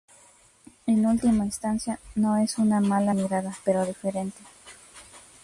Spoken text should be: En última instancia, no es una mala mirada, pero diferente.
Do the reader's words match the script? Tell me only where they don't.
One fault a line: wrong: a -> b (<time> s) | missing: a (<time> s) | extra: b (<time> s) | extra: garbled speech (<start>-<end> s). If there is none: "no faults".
no faults